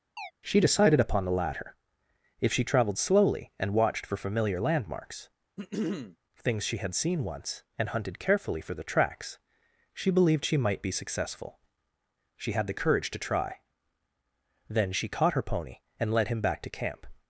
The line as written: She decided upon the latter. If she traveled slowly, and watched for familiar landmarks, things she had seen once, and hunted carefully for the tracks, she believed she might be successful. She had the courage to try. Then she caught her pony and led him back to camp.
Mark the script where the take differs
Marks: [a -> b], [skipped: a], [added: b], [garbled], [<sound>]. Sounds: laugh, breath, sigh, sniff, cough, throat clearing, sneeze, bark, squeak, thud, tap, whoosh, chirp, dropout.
[chirp] She decided upon the latter. If she traveled slowly, and watched for familiar landmarks, [throat clearing] things she had seen once, and hunted carefully for the tracks, she believed she might be successful. She had the courage to try. Then she caught her pony and led him back to camp.